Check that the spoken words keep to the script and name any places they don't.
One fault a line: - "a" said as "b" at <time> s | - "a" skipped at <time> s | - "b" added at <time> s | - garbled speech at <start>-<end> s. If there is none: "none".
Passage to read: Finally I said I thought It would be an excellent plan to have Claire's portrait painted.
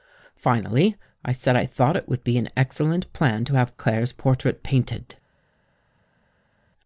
none